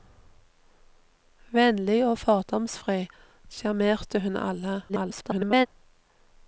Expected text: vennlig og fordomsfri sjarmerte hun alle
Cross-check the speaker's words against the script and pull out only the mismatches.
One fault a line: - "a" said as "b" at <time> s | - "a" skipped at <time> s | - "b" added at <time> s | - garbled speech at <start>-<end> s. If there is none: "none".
- garbled speech at 4.9-5.7 s